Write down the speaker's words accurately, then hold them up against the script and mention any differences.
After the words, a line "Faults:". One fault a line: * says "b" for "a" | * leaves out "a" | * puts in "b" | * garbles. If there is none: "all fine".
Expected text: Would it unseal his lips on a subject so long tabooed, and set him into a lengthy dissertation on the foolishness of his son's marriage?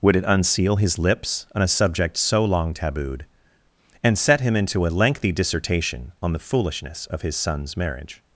Would it unseal his lips on a subject so long tabooed, and set him into a lengthy dissertation on the foolishness of his son's marriage?
Faults:
all fine